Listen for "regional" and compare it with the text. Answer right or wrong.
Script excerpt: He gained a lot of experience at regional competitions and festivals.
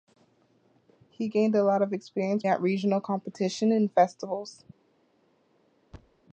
right